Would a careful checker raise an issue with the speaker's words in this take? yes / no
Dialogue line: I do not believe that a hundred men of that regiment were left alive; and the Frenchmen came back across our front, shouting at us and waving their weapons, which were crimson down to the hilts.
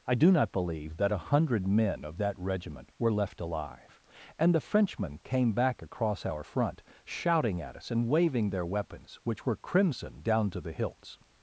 no